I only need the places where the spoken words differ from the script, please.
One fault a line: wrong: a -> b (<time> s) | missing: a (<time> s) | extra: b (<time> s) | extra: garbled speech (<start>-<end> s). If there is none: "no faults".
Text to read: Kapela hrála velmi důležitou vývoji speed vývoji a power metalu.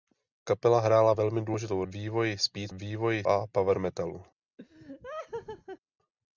no faults